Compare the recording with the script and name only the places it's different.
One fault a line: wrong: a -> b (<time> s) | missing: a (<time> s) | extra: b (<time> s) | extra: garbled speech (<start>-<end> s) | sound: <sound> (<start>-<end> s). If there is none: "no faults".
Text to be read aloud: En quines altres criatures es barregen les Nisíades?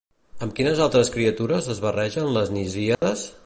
wrong: En -> Amb (0.5 s)
sound: dropout (2.9-3.0 s)